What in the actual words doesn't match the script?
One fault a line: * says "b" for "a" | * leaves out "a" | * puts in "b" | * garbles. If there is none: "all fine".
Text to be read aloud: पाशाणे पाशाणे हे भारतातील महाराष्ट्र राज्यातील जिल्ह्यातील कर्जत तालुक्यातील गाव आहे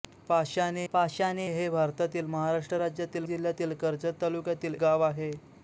all fine